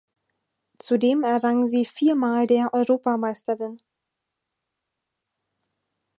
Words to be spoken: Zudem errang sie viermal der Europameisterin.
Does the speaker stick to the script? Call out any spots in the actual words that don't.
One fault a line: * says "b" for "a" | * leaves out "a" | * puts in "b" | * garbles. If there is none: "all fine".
all fine